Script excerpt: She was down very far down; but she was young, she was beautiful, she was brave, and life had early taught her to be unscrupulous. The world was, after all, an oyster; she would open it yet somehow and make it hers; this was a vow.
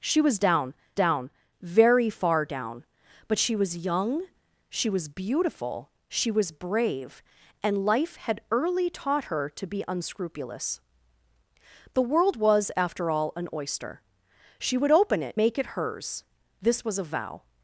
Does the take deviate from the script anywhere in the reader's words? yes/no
yes